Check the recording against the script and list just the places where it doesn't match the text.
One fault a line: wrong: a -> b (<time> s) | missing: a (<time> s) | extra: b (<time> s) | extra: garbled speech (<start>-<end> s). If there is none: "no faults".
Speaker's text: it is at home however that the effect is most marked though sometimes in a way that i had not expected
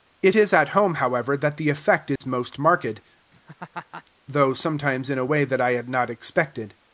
no faults